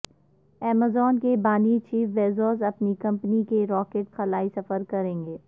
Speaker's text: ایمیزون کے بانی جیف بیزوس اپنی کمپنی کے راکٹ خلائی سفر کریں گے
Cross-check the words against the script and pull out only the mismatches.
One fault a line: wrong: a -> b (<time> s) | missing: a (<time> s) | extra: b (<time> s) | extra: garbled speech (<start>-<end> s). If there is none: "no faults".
no faults